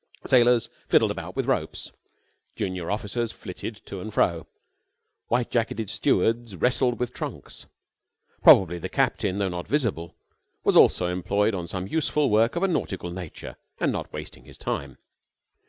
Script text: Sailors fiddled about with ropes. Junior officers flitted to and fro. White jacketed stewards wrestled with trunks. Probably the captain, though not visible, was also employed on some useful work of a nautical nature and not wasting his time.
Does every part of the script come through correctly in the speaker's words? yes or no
yes